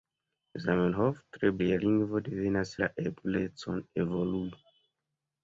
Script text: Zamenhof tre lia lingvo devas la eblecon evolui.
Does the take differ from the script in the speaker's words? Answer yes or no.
no